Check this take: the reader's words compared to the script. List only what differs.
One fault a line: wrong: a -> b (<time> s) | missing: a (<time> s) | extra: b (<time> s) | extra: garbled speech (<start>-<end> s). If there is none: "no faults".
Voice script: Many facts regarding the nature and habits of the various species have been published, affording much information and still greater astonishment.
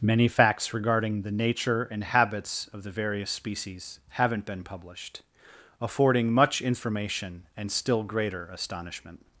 wrong: have -> haven't (4.1 s)